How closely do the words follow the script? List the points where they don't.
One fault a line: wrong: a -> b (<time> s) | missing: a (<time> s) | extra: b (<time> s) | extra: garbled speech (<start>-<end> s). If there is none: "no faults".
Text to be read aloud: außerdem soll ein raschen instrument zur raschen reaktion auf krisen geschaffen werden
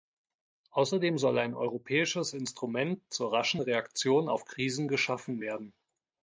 wrong: raschen -> europäisches (1.5 s)